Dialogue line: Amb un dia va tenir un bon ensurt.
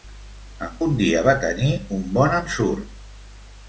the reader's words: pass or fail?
pass